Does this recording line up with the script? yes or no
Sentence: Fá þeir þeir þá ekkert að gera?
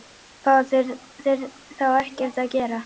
yes